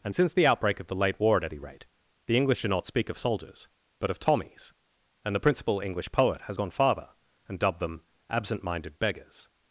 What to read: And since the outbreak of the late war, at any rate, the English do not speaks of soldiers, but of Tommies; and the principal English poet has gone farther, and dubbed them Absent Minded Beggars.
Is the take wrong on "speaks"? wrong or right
wrong